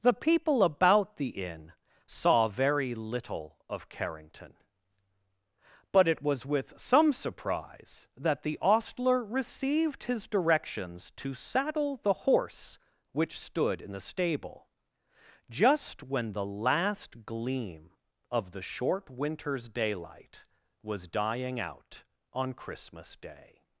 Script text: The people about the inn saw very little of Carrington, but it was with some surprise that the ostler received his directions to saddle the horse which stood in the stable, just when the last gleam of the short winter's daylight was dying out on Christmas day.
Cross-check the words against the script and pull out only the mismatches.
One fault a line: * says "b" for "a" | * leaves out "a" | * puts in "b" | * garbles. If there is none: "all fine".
all fine